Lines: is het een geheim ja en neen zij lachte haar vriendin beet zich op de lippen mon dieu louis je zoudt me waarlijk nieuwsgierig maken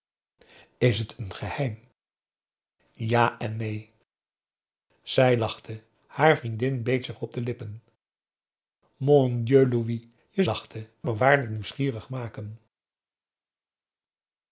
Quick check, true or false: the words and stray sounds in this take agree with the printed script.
false